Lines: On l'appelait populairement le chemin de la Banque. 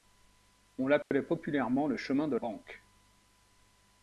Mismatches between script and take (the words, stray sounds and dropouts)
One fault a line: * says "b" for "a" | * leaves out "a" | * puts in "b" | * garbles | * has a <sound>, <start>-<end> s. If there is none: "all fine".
* has a dropout, 1.0-1.1 s
* leaves out "la"